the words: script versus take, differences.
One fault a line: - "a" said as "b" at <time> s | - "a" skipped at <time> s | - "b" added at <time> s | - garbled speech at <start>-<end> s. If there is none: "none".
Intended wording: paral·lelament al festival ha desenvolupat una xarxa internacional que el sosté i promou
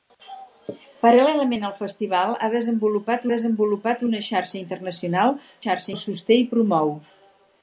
- "desenvolupat" added at 3.3 s
- "que" said as "xarxa" at 5.6 s